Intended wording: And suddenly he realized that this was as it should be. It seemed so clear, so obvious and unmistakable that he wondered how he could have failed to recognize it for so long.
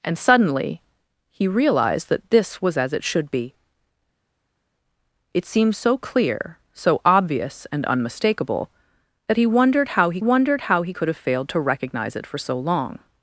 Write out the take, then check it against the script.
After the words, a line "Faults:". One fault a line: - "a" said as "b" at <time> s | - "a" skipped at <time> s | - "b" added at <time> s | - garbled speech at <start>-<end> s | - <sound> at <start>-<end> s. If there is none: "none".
And suddenly he realized that this was as it should be. It seemed so clear, so obvious and unmistakable that he wondered how he wondered how he could have failed to recognize it for so long.
Faults:
- "wondered how he" added at 10.2 s